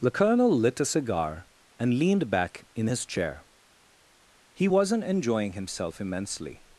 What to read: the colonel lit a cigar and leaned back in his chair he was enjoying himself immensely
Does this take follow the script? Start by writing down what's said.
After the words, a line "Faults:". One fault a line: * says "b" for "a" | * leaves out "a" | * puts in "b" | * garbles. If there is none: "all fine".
the colonel lit a cigar and leaned back in his chair he wasn't enjoying himself immensely
Faults:
* says "wasn't" for "was"